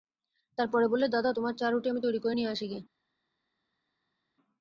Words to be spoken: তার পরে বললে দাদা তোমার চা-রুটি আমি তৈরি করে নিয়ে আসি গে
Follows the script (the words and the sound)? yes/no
yes